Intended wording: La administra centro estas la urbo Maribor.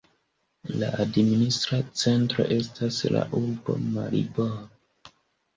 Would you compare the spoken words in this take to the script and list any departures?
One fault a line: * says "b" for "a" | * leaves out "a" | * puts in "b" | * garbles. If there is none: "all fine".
all fine